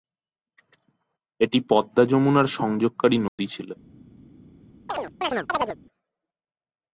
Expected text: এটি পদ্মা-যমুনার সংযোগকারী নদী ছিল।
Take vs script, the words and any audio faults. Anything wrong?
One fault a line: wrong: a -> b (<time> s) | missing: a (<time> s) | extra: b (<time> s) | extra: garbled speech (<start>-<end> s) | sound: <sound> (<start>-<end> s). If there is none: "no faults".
sound: dropout (3.3-3.4 s)
sound: chirp (4.9-5.8 s)